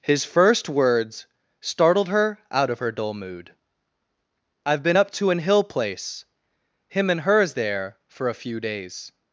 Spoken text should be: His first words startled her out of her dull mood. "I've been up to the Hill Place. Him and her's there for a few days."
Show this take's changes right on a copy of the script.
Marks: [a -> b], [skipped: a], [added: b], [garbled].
His first words startled her out of her dull mood. "I've been up to [the -> an] Hill Place. Him and her's there for a few days."